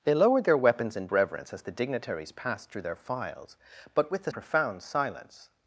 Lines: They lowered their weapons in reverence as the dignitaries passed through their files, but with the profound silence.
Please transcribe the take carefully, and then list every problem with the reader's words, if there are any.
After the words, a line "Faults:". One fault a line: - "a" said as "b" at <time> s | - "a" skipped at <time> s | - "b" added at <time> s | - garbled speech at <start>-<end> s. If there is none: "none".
They lowered their weapons in reverence as the dignitaries passed through their files, but with the profound silence.
Faults:
none